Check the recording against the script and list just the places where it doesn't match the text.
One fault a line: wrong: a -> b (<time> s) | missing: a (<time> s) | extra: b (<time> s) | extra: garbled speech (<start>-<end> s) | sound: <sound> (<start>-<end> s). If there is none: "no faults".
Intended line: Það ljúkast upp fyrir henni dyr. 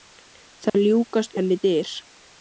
sound: dropout (0.7-0.7 s)
missing: upp fyrir (1.4 s)